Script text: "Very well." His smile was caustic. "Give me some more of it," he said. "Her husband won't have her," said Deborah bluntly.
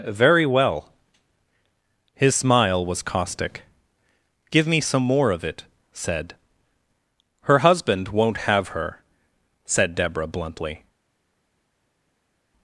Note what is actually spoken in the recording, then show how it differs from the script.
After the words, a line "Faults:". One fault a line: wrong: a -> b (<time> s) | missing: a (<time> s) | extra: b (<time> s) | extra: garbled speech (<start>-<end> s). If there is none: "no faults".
"Very well." His smile was caustic. "Give me some more of it," said. "Her husband won't have her," said Deborah bluntly.
Faults:
missing: he (5.6 s)